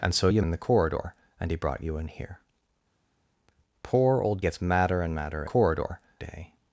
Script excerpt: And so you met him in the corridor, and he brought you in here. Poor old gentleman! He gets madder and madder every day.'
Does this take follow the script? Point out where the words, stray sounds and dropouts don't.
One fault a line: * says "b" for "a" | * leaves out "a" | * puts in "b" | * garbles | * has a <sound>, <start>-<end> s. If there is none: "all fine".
* leaves out "met him"
* leaves out "gentleman He"
* says "corridor" for "every"